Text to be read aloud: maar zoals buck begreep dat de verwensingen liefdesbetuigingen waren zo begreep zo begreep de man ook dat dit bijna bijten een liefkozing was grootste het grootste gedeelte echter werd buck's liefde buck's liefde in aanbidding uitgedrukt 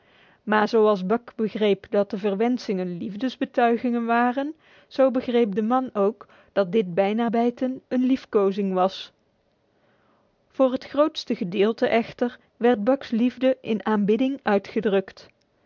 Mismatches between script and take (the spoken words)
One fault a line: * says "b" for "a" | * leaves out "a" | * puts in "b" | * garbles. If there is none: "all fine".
* leaves out "zo begreep"
* says "voor" for "grootste"
* leaves out "buck's liefde"